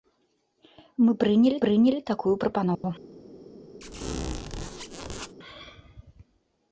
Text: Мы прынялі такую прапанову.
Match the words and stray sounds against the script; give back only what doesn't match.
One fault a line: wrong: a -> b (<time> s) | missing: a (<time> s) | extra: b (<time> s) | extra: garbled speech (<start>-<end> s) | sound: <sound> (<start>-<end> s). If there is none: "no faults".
extra: прынялі (1.6 s)
sound: dropout (2.7-2.8 s)
sound: squeak (3.8-5.3 s)